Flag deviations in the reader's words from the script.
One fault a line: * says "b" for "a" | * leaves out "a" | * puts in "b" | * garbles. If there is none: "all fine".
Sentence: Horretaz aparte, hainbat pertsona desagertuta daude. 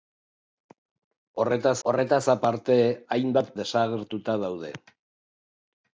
* puts in "horretaz"
* leaves out "pertsona"